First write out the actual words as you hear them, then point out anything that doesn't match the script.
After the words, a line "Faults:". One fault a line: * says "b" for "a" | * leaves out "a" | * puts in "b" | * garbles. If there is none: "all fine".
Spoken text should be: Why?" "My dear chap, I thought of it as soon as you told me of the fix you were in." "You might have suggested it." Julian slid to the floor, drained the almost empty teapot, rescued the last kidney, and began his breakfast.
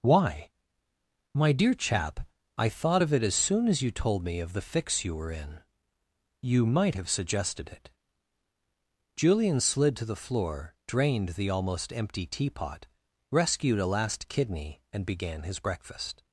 Why?" "My dear chap, I thought of it as soon as you told me of the fix you were in." "You might have suggested it." Julian slid to the floor, drained the almost empty teapot, rescued a last kidney, and began his breakfast.
Faults:
* says "a" for "the"